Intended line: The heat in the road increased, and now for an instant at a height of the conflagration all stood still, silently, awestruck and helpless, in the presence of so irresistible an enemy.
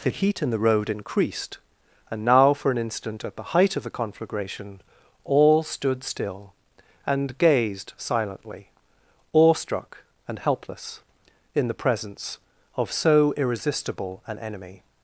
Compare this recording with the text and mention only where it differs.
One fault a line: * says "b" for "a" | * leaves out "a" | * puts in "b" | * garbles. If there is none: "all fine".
* says "the" for "a"
* puts in "and gazed"